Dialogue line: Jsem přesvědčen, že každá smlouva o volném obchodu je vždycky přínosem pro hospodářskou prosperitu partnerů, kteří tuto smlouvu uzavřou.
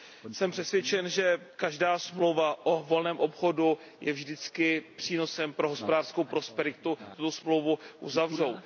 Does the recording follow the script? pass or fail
fail